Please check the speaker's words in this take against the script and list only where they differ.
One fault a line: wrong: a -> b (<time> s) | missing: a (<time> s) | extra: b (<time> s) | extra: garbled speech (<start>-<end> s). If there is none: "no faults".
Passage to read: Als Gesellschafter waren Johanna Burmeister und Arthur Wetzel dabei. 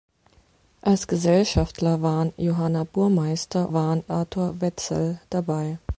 wrong: und -> waren (3.7 s)